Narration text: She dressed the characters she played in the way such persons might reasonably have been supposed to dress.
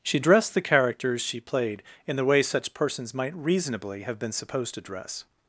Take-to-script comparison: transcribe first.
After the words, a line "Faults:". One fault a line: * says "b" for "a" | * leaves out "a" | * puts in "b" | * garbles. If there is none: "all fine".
She dressed the characters she played in the way such persons might reasonably have been supposed to dress.
Faults:
all fine